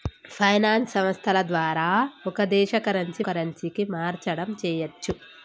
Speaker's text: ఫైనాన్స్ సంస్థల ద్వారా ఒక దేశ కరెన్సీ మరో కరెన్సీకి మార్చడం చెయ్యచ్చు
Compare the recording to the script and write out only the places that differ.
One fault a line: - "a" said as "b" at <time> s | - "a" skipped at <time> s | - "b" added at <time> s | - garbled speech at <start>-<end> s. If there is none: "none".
- "మరో" skipped at 3.2 s